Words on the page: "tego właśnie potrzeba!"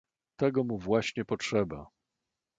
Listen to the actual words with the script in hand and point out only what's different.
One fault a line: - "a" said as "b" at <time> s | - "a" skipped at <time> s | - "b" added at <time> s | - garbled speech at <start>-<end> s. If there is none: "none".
- "mu" added at 0.6 s